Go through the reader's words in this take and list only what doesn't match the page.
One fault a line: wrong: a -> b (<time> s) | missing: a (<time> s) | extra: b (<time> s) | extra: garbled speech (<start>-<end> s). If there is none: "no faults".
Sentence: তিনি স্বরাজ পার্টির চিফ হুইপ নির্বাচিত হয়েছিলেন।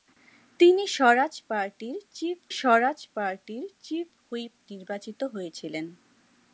extra: স্বরাজ পার্টির চিফ (2.5 s)